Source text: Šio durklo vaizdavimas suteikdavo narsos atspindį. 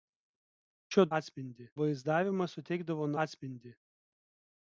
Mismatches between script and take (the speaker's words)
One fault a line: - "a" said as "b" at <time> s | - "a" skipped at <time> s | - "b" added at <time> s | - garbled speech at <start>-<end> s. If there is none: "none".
- "durklo" said as "atspindį" at 1.2 s
- "narsos" skipped at 3.1 s